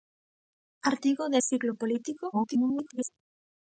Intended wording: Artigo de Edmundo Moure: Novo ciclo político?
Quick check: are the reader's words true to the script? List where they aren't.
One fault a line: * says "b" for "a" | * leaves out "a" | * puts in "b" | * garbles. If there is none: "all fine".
* leaves out "Edmundo Moure Novo"
* garbles